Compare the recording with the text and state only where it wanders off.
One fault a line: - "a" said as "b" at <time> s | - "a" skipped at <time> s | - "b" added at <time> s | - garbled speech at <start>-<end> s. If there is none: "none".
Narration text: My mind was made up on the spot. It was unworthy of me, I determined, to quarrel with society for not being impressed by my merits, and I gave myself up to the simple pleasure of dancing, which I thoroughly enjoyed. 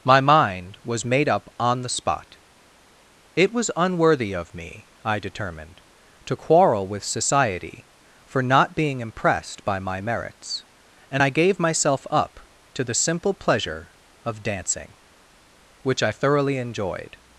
none